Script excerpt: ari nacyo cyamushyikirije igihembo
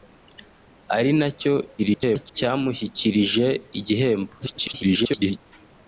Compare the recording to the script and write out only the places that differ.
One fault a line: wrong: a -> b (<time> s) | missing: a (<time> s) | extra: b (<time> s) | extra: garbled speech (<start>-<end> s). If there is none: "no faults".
extra: garbled speech (1.8-2.3 s)
extra: garbled speech (4.4-5.4 s)